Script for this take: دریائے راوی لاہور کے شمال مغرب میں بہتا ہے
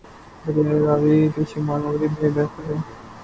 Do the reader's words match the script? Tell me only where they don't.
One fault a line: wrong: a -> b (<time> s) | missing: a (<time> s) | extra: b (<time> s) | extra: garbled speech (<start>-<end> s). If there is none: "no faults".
missing: لاہور (1.2 s)